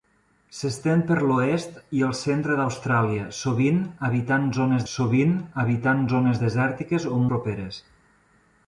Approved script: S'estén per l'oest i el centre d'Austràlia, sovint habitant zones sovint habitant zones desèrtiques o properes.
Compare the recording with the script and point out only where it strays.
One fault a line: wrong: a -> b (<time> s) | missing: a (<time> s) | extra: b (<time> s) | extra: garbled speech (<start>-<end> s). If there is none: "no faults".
no faults